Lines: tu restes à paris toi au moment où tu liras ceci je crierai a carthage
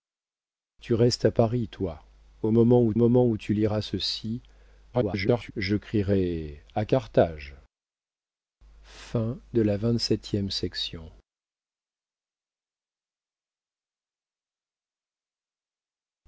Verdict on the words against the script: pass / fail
fail